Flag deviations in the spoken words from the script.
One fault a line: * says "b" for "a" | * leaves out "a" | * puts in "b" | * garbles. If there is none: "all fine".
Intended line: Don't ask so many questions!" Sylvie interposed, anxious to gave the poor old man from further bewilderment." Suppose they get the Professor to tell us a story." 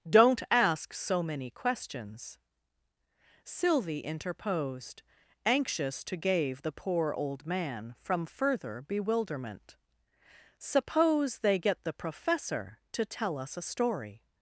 all fine